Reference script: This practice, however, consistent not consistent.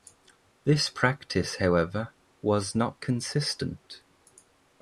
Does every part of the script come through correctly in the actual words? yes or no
no